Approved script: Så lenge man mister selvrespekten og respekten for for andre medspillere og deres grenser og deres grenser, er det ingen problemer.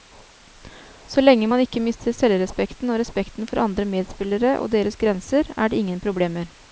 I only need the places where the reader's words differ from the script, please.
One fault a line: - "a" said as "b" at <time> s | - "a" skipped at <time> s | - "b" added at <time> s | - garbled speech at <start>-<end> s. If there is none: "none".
- "ikke" added at 1.6 s
- "for" skipped at 3.6 s
- "og deres grenser" skipped at 5.5 s